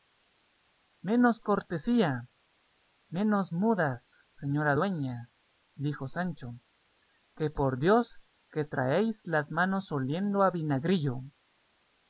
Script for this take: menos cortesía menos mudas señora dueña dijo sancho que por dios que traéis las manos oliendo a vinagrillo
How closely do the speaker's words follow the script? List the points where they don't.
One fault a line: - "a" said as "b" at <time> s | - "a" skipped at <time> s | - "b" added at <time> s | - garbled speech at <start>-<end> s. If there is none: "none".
none